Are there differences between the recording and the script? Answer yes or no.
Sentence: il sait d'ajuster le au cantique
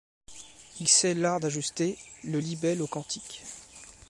yes